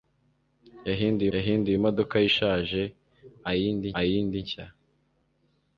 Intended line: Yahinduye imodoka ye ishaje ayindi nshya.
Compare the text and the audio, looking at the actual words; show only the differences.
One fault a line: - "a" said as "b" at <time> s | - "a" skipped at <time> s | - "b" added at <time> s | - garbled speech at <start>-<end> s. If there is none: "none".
- "yahinduye" added at 1.3 s
- "ayindi" added at 4.0 s